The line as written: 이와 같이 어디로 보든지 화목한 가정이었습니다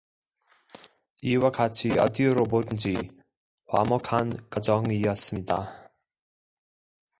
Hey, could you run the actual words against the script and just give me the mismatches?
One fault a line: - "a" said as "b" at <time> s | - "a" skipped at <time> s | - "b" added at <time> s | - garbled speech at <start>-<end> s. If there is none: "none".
none